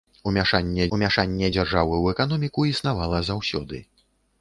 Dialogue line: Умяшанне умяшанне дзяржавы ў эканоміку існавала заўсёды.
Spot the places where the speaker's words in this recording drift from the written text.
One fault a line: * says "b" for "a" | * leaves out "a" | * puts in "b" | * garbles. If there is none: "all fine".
all fine